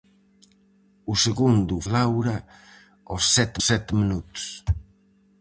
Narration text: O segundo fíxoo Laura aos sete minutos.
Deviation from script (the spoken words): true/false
true